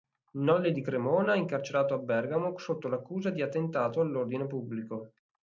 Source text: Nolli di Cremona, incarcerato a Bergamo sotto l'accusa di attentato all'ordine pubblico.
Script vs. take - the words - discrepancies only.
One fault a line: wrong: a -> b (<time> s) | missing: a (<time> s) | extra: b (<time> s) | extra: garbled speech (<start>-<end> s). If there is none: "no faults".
no faults